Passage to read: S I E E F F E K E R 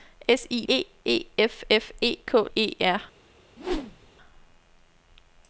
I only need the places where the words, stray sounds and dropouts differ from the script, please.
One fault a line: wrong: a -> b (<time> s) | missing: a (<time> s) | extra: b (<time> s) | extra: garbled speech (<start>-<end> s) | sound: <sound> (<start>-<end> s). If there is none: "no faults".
sound: whoosh (3.6-4.1 s)